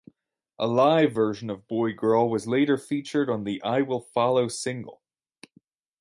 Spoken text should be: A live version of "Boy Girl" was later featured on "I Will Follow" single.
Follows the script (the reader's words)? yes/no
no